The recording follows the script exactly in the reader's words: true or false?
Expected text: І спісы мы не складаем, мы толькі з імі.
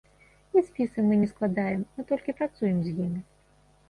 false